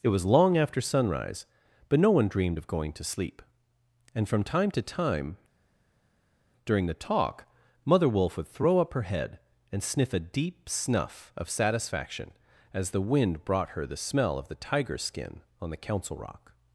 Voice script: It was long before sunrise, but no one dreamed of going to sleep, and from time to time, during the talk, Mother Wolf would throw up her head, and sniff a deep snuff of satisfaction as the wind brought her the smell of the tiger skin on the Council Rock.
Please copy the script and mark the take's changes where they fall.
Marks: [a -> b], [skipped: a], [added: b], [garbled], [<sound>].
It was long [before -> after] sunrise, but no one dreamed of going to sleep, and from time to time, during the talk, Mother Wolf would throw up her head, and sniff a deep snuff of satisfaction as the wind brought her the smell of the tiger skin on the Council Rock.